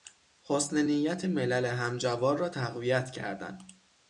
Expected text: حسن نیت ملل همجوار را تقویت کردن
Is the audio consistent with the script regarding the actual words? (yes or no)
yes